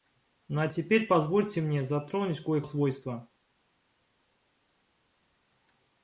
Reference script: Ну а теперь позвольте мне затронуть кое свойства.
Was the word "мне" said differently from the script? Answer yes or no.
no